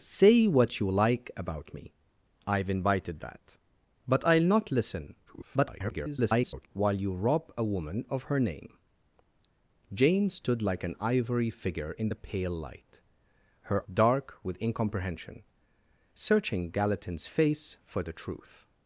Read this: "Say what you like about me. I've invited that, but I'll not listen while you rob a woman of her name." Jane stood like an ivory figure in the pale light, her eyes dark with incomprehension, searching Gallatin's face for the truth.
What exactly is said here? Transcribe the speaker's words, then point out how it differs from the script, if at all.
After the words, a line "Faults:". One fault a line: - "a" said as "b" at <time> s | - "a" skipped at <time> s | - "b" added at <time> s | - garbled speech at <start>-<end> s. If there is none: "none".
"Say what you like about me. I've invited that, but I'll not listen [garbled] while you rob a woman of her name." Jane stood like an ivory figure in the pale light, her dark with incomprehension, searching Gallatin's face for the truth.
Faults:
- garbled speech at 5.3-6.7 s
- "eyes" skipped at 13.9 s